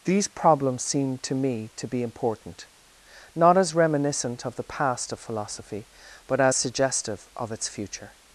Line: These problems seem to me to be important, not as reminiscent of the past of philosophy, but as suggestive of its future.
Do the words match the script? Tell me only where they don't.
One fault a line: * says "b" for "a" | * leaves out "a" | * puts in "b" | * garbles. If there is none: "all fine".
all fine